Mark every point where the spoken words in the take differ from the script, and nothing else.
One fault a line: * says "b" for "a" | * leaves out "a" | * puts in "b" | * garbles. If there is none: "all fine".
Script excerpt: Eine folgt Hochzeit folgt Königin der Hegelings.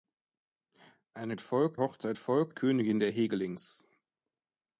all fine